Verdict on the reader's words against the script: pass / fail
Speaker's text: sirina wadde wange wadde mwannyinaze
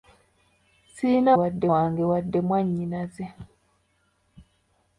pass